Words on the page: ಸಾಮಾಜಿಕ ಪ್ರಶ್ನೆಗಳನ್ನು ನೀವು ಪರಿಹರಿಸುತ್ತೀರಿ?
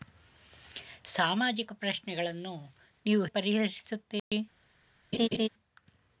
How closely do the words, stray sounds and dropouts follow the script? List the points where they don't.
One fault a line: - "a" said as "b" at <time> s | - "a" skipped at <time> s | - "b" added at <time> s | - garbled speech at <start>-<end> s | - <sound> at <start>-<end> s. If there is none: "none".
- dropout at 4.2-4.3 s
- laugh at 5.1-5.5 s